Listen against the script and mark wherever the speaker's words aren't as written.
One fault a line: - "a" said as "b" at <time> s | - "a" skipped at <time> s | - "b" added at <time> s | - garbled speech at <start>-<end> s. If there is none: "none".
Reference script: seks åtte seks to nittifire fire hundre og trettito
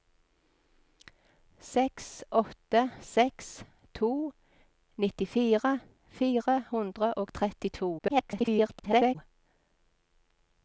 - garbled speech at 8.0-9.2 s